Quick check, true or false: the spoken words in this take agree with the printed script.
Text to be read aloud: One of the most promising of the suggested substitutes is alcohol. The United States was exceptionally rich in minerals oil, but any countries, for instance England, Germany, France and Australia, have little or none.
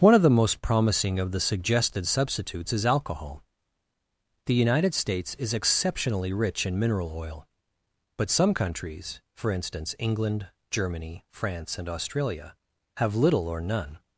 false